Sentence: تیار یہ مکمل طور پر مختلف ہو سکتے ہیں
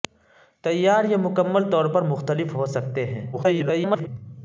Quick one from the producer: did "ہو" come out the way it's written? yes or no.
yes